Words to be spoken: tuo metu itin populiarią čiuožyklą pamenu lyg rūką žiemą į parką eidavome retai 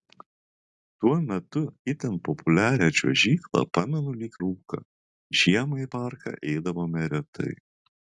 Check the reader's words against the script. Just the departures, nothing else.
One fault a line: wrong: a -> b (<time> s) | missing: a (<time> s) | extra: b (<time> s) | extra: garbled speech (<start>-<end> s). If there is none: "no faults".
no faults